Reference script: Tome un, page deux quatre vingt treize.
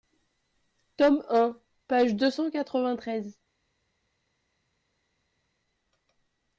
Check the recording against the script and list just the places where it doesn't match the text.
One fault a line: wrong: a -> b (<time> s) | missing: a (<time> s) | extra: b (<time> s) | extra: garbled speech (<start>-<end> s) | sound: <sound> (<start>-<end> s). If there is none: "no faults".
extra: cent (2.3 s)